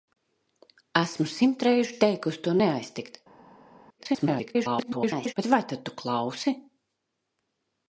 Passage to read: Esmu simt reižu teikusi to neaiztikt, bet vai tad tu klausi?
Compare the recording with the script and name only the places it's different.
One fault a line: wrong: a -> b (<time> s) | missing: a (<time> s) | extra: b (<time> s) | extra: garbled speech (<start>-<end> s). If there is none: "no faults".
extra: garbled speech (4.0-5.3 s)